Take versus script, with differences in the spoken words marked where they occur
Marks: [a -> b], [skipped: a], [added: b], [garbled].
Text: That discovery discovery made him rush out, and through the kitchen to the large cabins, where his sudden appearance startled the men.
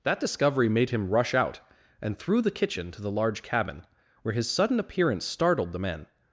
That discovery [skipped: discovery] made him rush out, and through the kitchen to the large [cabins, -> cabin] where his sudden appearance startled the men.